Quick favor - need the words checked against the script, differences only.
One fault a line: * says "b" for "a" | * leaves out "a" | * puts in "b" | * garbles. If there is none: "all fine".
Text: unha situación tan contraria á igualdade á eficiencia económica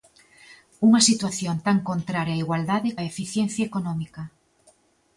all fine